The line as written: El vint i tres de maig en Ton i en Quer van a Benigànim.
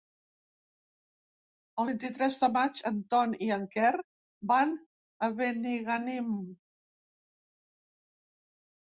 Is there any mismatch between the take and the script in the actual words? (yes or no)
no